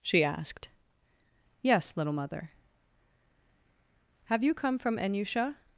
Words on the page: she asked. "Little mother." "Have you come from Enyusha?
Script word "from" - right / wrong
right